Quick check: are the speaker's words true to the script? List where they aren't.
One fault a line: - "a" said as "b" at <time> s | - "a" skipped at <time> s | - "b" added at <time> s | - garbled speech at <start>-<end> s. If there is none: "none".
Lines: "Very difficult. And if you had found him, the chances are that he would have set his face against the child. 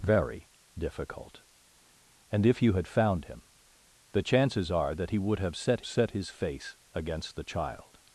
- "set" added at 5.8 s